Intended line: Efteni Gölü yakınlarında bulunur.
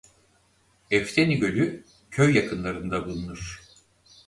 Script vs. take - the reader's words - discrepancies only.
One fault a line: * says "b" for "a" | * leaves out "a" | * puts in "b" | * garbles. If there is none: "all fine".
* puts in "köy"